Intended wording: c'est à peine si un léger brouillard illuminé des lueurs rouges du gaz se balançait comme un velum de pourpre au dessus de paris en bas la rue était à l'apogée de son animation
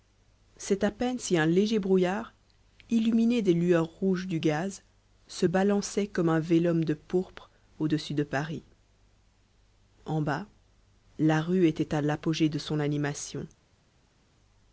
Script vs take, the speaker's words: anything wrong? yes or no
no